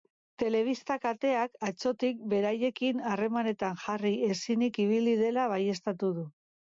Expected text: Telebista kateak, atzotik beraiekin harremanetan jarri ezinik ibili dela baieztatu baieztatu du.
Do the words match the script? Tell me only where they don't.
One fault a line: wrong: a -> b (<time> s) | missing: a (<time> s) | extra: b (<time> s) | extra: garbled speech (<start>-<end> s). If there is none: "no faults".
missing: baieztatu (6.1 s)